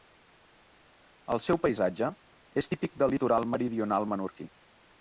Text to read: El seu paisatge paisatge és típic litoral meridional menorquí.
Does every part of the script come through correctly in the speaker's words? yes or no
no